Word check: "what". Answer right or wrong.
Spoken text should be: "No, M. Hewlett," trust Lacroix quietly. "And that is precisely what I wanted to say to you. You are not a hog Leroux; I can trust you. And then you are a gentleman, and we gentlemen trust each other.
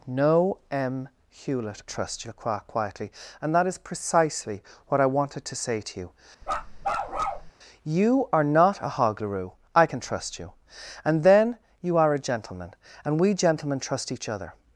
right